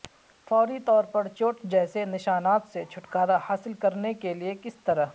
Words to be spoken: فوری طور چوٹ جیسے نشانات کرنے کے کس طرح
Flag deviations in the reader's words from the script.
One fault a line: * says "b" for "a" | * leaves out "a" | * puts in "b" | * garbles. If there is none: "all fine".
* puts in "پر"
* puts in "سے چھٹکارا حاصل"
* puts in "لئے"